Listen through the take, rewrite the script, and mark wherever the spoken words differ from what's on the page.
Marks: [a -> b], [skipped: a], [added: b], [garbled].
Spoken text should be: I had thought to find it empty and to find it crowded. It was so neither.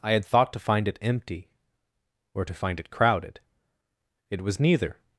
I had thought to find it empty [and -> or] to find it crowded. It was [skipped: so] neither.